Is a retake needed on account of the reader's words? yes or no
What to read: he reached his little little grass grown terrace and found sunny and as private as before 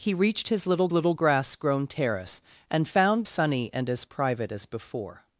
no